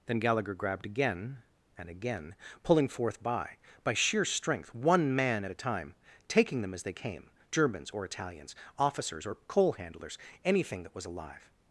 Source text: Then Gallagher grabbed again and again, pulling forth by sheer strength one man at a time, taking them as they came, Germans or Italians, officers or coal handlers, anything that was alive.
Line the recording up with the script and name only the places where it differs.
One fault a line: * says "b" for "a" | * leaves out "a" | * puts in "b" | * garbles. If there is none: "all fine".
* puts in "by"